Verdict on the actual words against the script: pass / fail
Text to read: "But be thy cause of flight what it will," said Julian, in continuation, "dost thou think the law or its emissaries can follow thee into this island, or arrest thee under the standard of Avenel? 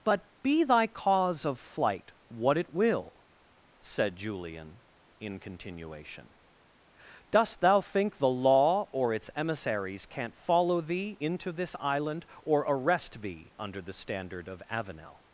fail